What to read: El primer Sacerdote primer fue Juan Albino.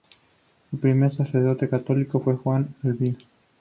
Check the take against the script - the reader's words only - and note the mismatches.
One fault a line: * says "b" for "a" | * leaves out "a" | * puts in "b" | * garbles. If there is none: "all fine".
* says "católico" for "primer"